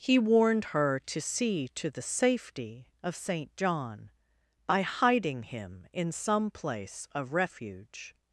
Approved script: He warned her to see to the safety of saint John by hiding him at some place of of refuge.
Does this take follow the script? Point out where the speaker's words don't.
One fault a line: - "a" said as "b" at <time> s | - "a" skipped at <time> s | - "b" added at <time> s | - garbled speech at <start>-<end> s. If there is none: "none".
- "at" said as "in" at 5.9 s
- "of" skipped at 7.3 s